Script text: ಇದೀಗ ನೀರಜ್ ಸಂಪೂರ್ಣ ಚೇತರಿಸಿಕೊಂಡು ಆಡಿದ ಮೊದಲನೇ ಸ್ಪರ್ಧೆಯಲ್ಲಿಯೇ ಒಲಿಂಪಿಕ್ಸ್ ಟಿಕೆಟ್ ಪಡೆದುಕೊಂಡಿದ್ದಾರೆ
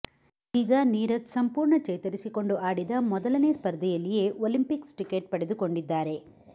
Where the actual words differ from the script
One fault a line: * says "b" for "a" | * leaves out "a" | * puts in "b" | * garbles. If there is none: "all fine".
all fine